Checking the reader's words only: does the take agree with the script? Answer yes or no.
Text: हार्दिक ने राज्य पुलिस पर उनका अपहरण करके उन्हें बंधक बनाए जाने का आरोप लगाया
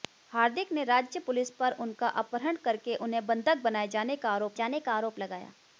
no